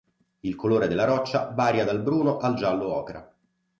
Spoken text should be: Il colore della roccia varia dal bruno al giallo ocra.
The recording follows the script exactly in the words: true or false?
true